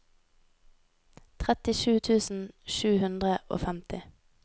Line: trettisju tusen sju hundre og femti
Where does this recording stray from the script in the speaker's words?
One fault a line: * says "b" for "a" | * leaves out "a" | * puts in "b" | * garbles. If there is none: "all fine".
all fine